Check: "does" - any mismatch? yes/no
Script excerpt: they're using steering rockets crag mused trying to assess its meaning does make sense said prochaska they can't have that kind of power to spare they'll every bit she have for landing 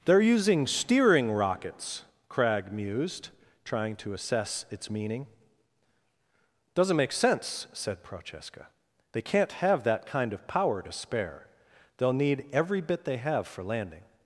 yes